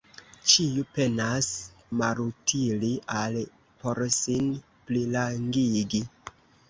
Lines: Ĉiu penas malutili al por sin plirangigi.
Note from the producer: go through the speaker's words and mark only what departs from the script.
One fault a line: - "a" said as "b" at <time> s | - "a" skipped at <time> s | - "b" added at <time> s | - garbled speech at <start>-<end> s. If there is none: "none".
none